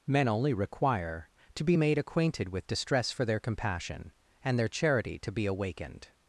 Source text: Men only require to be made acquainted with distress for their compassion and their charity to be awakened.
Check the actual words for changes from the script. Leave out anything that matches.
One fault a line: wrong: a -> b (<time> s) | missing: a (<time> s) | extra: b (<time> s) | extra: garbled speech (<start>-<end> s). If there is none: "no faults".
no faults